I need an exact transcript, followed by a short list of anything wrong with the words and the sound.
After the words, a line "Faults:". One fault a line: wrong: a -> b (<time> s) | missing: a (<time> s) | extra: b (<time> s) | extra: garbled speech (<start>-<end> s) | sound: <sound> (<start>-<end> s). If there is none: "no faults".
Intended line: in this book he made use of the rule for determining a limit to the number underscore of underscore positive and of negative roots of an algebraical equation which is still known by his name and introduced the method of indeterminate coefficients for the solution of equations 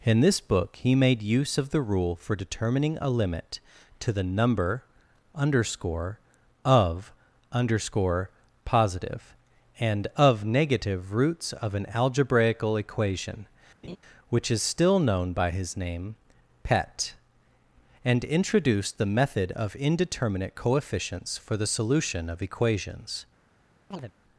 in this book he made use of the rule for determining a limit to the number underscore of underscore positive and of negative roots of an algebraical equation which is still known by his name pet and introduced the method of indeterminate coefficients for the solution of equations
Faults:
sound: laugh (13.8-14.0 s)
extra: pet (16.6 s)
sound: chirp (23.9-24.1 s)